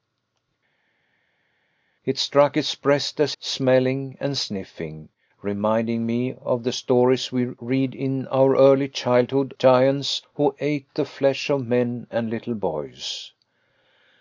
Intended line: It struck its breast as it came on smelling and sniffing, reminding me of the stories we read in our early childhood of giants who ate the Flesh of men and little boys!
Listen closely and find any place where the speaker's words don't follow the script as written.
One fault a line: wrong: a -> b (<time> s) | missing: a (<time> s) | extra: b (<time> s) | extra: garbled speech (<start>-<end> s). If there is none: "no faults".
missing: it came on (3.4 s)
missing: of (9.5 s)